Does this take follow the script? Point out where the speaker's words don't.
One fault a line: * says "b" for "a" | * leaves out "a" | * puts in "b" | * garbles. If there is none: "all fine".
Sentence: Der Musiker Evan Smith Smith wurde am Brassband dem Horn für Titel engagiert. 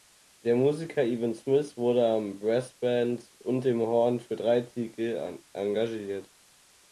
* leaves out "Smith"
* puts in "und"
* puts in "drei"